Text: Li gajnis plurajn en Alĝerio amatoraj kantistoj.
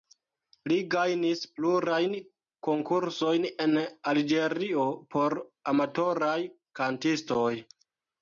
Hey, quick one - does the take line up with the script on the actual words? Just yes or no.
no